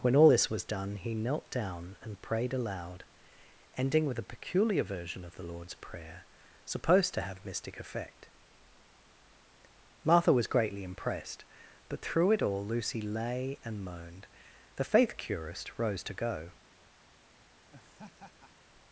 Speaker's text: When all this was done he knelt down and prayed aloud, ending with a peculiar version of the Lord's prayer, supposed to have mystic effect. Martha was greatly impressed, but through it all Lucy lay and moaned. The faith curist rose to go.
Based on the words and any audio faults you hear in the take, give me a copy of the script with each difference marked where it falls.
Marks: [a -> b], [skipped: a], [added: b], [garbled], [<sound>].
When all this was done he knelt down and prayed aloud, ending with a peculiar version of the Lord's prayer, supposed to have mystic effect. Martha was greatly impressed, but through it all Lucy lay and moaned. The faith curist rose to go. [laugh]